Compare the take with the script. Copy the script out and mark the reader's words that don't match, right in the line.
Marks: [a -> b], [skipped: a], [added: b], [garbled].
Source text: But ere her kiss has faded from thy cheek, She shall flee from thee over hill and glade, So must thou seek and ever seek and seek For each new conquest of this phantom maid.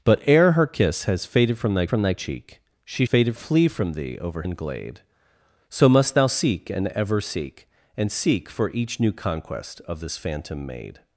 But ere her kiss has faded from thy [added: from thy] cheek, She [shall -> faded] flee from thee over [skipped: hill] and glade, So must thou seek and ever seek and seek For each new conquest of this phantom maid.